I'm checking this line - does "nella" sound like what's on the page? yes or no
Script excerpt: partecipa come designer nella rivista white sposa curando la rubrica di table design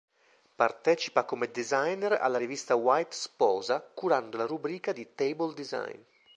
no